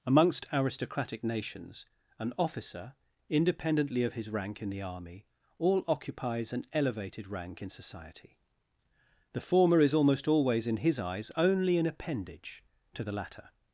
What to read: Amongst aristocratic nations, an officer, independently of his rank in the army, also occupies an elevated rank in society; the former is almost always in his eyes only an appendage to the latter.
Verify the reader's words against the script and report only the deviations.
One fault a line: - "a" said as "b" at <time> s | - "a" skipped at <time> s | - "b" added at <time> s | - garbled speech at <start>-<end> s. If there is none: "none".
- "also" said as "all" at 5.6 s